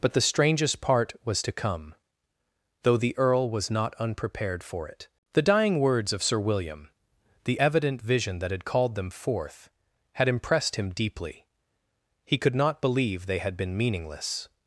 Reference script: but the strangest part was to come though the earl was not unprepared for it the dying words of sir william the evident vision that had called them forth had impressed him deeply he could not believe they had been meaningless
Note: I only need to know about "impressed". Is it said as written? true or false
true